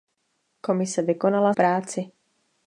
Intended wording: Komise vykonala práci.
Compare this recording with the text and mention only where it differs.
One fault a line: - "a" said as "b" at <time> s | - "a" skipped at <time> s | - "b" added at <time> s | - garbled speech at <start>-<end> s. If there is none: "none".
none